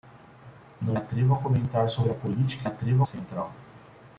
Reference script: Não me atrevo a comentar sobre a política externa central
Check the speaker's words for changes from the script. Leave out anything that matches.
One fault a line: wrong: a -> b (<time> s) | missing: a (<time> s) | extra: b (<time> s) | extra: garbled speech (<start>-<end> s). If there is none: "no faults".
missing: me (1.0 s)
wrong: externa -> atrevo (2.6 s)